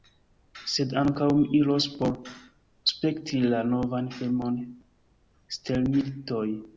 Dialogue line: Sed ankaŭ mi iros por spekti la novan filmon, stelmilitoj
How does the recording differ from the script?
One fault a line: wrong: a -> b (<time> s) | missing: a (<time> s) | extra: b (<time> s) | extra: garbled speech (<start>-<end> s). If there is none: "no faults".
no faults